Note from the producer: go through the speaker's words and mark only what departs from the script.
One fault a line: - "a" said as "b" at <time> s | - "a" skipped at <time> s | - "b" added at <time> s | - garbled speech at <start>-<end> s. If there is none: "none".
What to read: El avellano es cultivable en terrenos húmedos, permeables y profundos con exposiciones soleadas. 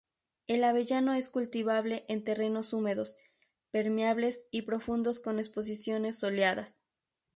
none